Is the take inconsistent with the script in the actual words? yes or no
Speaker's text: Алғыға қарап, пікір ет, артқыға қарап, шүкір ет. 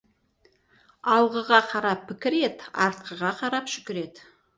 no